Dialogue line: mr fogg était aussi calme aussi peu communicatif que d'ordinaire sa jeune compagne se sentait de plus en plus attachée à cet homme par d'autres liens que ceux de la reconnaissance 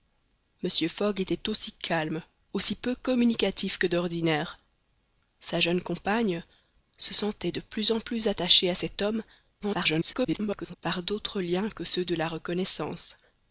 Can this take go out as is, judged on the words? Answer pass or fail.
fail